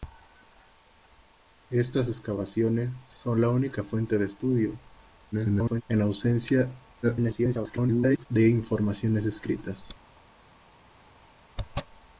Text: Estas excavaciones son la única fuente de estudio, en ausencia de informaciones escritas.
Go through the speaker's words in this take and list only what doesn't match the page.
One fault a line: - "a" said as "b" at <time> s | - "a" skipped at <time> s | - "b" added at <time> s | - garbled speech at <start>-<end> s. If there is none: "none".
- garbled speech at 5.3-5.8 s
- garbled speech at 7.0-8.3 s